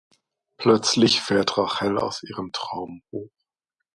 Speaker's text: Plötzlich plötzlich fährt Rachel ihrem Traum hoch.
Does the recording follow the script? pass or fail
fail